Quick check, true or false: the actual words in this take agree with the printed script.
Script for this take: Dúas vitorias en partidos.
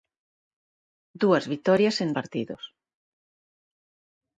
true